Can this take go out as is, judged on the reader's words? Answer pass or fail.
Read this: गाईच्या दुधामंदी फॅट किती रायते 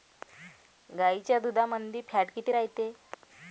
pass